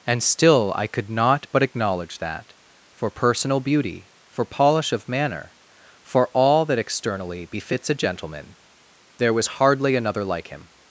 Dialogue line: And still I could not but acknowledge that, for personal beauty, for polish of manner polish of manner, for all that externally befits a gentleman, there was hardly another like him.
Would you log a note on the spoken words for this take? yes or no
yes